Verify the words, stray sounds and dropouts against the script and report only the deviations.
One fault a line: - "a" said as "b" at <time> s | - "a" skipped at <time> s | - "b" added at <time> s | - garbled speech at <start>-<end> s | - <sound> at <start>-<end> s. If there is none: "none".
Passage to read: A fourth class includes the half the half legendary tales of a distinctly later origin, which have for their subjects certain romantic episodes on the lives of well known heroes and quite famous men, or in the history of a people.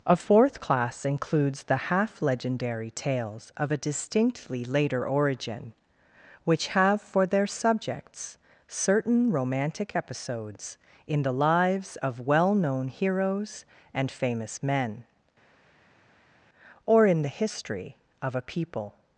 - "the half" skipped at 2.2 s
- "on" said as "in" at 11.1 s
- "quite" skipped at 14.1 s